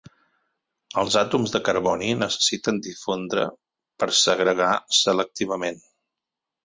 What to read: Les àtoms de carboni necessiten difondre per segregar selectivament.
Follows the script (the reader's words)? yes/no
no